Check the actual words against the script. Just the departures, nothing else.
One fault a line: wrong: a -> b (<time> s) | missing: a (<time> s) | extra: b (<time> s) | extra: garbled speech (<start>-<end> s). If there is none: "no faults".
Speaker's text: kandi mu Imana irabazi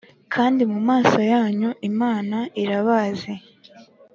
extra: maso yanyu (0.9 s)